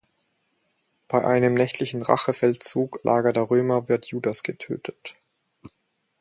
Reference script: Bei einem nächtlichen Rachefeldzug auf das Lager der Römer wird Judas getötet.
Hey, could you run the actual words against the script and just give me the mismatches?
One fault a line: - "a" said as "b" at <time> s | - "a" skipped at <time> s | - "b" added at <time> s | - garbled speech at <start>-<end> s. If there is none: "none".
- "auf das" skipped at 3.0 s